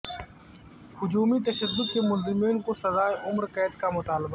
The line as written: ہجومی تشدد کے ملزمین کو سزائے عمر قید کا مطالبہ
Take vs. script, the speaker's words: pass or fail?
pass